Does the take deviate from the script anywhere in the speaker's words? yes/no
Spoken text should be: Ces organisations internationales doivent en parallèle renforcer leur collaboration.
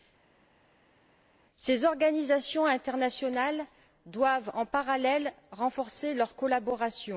no